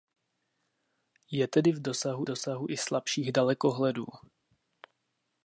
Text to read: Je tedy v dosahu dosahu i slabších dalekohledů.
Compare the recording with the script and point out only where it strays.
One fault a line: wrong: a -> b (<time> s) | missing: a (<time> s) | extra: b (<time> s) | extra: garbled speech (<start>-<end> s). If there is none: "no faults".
no faults